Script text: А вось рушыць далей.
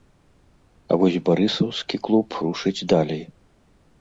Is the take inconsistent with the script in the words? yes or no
yes